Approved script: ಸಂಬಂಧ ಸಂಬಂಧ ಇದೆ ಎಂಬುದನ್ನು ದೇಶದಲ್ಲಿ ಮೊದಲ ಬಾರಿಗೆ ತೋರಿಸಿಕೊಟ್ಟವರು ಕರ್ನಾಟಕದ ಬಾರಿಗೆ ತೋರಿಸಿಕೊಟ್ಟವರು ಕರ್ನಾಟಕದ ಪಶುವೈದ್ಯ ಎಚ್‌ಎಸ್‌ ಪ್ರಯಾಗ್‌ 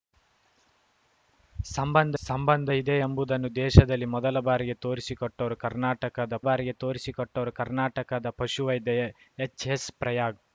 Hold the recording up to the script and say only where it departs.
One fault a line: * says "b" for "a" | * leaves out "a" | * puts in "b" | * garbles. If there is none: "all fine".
all fine